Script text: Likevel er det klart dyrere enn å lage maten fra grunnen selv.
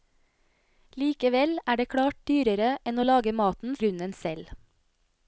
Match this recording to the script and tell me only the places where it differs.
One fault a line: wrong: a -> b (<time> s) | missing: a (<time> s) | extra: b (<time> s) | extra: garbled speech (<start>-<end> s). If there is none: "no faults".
missing: fra (3.8 s)